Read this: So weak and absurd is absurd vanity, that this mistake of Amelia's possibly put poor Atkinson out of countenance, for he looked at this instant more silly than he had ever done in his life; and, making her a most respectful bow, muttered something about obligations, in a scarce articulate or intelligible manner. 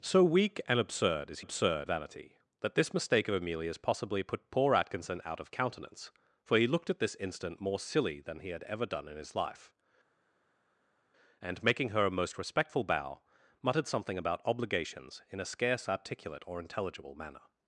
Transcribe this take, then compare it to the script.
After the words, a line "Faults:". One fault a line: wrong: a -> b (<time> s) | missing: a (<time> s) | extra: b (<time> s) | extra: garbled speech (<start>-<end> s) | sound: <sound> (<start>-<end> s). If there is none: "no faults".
So weak and absurd is absurd vanity, that this mistake of Amelia's possibly put poor Atkinson out of countenance, for he looked at this instant more silly than he had ever done in his life; and, making her a most respectful bow, muttered something about obligations, in a scarce articulate or intelligible manner.
Faults:
no faults